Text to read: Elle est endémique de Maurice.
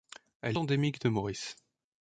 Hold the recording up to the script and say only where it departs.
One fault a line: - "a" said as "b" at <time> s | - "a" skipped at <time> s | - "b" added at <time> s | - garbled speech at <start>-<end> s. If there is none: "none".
- "est" skipped at 0.6 s